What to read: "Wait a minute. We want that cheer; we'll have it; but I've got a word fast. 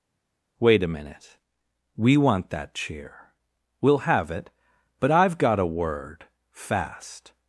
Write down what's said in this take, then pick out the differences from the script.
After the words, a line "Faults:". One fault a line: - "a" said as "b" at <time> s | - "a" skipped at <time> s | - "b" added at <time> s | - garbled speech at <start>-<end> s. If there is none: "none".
"Wait a minute. We want that cheer; we'll have it; but I've got a word fast.
Faults:
none